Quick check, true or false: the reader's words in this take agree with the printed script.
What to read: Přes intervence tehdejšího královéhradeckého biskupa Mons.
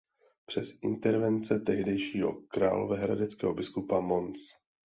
true